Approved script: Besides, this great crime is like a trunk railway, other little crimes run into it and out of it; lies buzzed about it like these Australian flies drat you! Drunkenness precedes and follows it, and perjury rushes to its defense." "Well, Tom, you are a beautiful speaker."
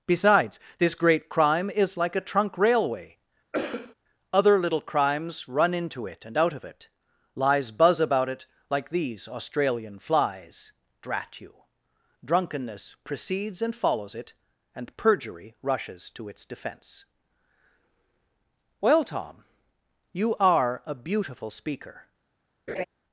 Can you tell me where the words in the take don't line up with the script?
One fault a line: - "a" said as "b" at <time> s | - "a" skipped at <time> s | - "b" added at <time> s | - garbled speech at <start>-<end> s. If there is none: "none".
- "buzzed" said as "buzz" at 7.7 s